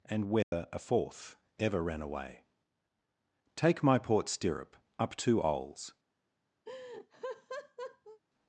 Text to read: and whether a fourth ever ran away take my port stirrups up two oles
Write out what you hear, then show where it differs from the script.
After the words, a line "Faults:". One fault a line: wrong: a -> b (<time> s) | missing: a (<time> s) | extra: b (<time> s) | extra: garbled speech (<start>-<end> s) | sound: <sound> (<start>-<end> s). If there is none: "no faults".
and whether a fourth ever ran away take my port stirrup up two oles
Faults:
sound: dropout (0.4-0.5 s)
wrong: stirrups -> stirrup (4.3 s)
sound: laugh (6.7-8.2 s)